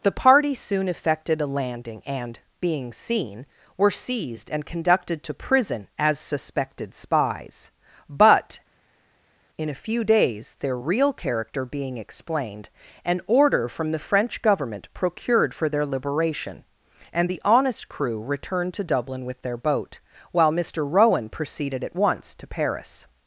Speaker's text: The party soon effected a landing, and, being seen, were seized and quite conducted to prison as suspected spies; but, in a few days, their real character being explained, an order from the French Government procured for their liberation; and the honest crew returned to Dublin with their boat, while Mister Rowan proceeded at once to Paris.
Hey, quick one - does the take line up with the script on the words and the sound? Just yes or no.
no